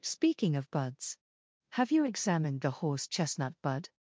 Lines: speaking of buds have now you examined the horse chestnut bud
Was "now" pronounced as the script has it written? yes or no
no